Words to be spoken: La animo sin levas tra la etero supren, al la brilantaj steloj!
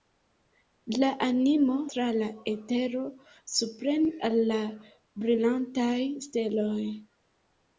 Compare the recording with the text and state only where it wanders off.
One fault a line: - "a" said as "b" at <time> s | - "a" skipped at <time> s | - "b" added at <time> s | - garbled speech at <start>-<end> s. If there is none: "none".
- "sin levas" skipped at 1.7 s